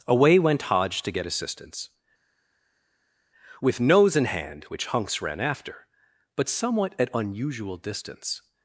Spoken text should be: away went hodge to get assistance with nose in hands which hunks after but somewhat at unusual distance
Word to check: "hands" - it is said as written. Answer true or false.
false